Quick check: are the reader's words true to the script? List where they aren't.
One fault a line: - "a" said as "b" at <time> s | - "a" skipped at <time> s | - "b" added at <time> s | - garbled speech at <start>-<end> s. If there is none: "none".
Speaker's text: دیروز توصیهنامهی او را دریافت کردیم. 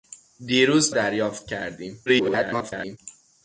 - "توصیهنامهی او را" skipped at 0.9 s
- garbled speech at 2.1-3.0 s